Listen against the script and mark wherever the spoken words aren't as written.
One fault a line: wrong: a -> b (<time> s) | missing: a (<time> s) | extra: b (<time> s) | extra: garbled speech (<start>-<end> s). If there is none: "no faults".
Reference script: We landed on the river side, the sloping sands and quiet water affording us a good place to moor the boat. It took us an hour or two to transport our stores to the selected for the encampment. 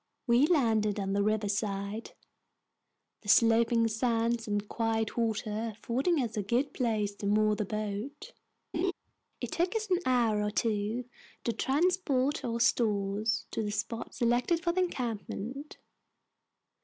extra: spot (13.7 s)